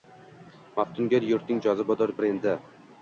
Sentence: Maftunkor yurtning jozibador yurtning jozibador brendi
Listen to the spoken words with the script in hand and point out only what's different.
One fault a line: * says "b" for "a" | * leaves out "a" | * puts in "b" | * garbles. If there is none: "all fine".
* leaves out "yurtning jozibador"